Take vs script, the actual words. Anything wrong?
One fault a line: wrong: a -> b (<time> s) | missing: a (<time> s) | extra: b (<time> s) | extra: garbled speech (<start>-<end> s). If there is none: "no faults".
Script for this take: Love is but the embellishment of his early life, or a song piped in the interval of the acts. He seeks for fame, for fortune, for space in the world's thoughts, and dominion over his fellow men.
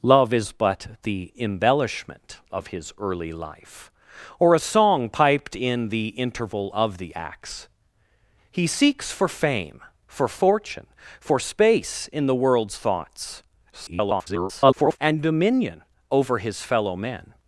extra: garbled speech (13.7-15.0 s)